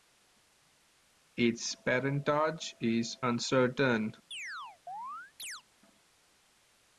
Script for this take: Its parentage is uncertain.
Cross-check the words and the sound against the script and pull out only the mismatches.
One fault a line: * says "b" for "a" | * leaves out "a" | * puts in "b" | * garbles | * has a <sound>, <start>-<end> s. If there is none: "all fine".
* has a chirp, 4.3-5.6 s